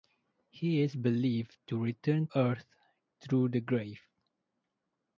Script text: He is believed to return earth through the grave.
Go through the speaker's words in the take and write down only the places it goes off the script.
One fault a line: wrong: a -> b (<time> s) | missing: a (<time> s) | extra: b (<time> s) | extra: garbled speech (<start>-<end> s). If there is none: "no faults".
no faults